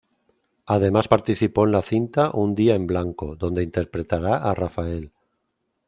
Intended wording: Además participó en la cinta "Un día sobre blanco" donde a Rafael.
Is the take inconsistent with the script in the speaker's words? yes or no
yes